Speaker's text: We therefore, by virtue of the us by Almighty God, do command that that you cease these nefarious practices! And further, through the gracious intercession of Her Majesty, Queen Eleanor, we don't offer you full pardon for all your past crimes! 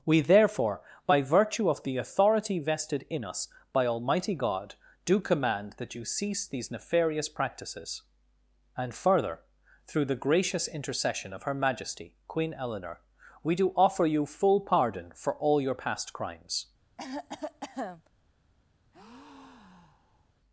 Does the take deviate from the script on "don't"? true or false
true